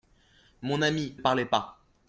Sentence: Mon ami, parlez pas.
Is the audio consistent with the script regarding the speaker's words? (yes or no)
yes